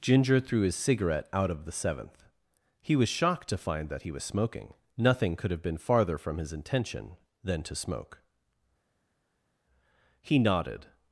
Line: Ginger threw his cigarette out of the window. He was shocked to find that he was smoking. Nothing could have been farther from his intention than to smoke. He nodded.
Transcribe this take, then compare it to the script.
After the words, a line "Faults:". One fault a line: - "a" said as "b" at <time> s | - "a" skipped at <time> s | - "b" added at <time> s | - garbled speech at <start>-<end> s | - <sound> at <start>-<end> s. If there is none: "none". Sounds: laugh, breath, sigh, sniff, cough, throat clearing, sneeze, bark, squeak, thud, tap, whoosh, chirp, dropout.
Ginger threw his cigarette out of the seventh. He was shocked to find that he was smoking. Nothing could have been farther from his intention than to smoke. He nodded.
Faults:
- "window" said as "seventh" at 1.7 s